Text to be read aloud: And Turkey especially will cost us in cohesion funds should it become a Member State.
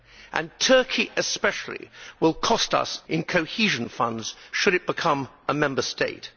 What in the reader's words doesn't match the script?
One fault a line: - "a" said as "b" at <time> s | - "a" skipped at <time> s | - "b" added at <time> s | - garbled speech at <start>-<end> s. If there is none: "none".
none